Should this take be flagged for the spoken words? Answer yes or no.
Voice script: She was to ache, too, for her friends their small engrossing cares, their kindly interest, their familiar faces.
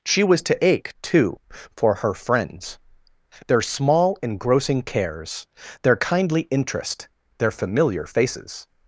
no